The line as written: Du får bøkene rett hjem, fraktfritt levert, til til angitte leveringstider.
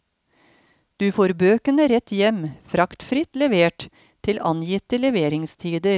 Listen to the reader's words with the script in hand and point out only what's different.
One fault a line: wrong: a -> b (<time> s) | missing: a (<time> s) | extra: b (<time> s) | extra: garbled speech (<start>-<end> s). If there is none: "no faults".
missing: til (4.4 s)